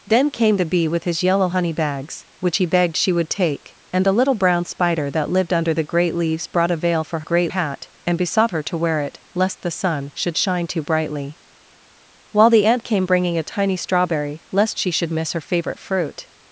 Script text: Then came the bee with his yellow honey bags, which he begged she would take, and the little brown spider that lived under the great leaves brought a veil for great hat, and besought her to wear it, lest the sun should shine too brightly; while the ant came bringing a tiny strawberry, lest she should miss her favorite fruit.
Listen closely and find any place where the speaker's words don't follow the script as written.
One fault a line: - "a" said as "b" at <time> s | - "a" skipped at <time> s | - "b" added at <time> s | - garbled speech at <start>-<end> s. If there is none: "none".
none